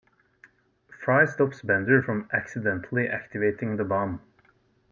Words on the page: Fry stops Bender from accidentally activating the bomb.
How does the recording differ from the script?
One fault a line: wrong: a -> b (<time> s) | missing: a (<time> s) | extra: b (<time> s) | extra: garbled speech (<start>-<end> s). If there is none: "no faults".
no faults